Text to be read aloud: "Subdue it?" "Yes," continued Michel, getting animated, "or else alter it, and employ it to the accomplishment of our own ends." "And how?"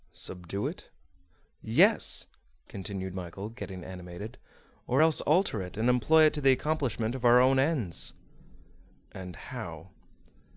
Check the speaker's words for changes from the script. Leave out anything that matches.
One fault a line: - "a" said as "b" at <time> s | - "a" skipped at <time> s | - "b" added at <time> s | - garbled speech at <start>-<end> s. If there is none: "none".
none